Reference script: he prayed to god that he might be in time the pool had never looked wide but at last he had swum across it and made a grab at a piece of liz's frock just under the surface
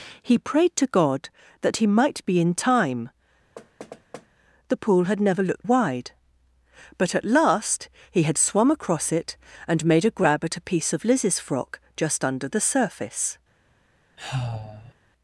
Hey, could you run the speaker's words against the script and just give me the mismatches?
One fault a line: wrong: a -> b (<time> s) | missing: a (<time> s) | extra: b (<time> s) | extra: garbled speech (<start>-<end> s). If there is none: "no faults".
no faults